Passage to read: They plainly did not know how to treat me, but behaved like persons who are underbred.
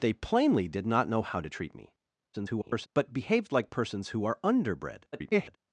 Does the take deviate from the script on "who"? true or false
false